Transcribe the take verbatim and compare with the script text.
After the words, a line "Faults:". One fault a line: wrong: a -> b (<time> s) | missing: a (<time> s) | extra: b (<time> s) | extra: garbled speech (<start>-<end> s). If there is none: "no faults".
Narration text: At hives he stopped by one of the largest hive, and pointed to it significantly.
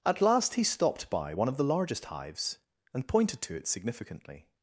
At last he stopped by one of the largest hives, and pointed to it significantly.
Faults:
wrong: hives -> last (0.2 s)
wrong: hive -> hives (2.0 s)